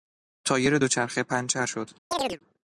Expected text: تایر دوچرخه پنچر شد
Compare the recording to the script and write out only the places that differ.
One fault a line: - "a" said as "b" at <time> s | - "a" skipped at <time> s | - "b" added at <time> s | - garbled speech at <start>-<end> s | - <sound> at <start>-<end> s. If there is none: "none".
- chirp at 2.1-2.4 s